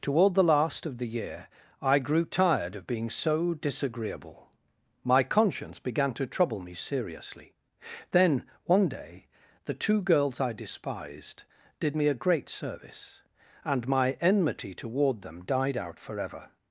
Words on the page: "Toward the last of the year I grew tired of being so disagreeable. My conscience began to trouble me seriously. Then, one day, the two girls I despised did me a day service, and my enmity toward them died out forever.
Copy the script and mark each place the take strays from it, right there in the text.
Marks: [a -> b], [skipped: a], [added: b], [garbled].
"Toward the last of the year I grew tired of being so disagreeable. My conscience began to trouble me seriously. Then, one day, the two girls I despised did me a [day -> great] service, and my enmity toward them died out forever.